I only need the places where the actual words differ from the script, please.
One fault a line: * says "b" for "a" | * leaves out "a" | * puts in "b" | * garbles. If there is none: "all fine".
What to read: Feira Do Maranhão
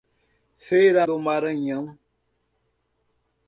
all fine